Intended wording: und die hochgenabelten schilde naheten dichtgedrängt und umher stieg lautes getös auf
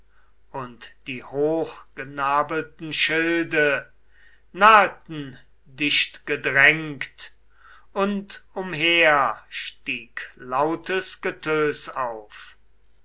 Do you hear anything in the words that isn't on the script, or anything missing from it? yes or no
no